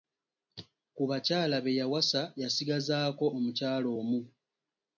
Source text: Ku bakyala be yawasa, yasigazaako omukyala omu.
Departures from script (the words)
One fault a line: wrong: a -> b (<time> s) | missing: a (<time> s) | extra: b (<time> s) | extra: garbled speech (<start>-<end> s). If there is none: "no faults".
no faults